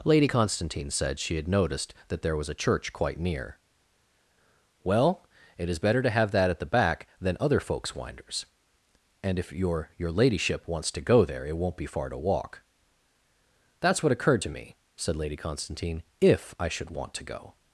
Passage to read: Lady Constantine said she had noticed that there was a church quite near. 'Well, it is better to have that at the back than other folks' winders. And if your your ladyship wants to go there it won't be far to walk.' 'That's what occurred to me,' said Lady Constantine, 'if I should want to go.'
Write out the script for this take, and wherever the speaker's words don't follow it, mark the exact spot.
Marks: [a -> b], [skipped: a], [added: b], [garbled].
Lady Constantine said she had noticed that there was a church quite near. 'Well, it is better to have that at the back than other folks' winders. And if your your ladyship wants to go there it won't be far to walk.' 'That's what occurred to me,' said Lady Constantine, 'if I should want to go.'